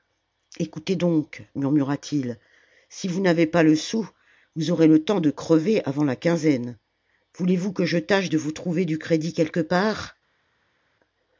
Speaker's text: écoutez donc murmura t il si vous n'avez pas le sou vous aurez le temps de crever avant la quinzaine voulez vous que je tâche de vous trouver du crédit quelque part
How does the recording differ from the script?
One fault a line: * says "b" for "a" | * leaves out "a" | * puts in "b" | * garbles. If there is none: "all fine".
all fine